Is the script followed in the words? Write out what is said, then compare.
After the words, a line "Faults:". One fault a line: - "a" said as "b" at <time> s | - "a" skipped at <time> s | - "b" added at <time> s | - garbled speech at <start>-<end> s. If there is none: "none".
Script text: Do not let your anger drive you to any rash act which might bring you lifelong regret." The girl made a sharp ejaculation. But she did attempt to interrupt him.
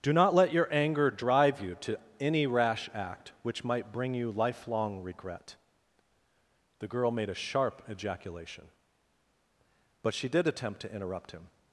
Do not let your anger drive you to any rash act which might bring you lifelong regret." The girl made a sharp ejaculation. But she did attempt to interrupt him.
Faults:
none